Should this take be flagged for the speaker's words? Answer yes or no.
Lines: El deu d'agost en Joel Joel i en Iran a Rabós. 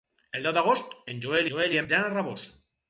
no